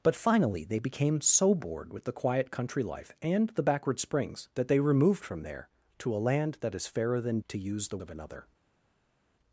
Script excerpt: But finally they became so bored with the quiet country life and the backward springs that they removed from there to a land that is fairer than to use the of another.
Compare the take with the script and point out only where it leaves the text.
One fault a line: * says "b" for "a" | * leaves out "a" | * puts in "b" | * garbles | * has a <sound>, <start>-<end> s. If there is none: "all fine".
all fine